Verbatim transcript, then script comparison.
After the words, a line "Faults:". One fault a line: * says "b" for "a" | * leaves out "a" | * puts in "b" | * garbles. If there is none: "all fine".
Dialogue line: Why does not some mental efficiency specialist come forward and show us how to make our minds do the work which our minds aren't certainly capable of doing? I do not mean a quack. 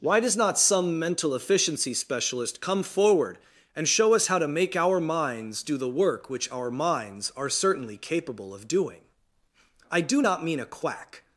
Why does not some mental efficiency specialist come forward and show us how to make our minds do the work which our minds are certainly capable of doing? I do not mean a quack.
Faults:
* says "are" for "aren't"